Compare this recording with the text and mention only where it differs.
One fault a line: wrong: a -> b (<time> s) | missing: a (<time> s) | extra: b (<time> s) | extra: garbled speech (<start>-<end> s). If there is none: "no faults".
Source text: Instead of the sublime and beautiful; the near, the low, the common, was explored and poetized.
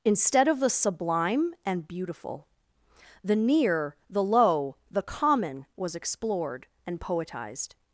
no faults